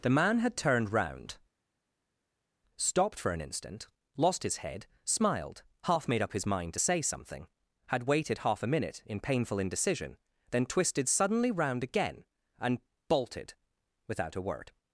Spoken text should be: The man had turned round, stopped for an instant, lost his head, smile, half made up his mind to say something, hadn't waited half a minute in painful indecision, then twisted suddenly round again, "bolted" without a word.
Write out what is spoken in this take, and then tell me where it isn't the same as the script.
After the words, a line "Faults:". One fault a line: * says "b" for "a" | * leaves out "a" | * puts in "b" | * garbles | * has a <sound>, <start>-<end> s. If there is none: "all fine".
The man had turned round, stopped for an instant, lost his head, smiled, half made up his mind to say something, had waited half a minute in painful indecision, then twisted suddenly round again, and "bolted" without a word.
Faults:
* says "smiled" for "smile"
* says "had" for "hadn't"
* puts in "and"